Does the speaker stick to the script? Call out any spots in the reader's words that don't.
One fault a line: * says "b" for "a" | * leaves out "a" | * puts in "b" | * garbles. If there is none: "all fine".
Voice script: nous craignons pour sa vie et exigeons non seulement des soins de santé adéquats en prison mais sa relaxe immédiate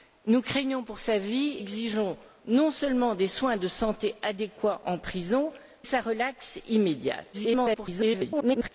* leaves out "et"
* leaves out "mais"
* garbles